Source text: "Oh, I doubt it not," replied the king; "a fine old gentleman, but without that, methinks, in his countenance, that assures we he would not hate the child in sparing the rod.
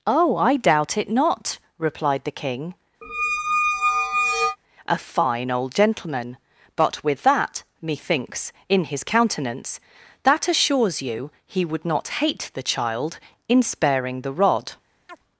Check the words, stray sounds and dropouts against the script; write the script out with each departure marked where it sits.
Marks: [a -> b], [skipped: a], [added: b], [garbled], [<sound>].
"Oh, I doubt it not," replied the king; [squeak] "a fine old gentleman, but [without -> with] that, methinks, in his countenance, that assures [we -> you] he would not hate the child in sparing the rod. [chirp]